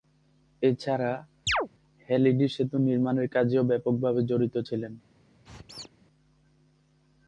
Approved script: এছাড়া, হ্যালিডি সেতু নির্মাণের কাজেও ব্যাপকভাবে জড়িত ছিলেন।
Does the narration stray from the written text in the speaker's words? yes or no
no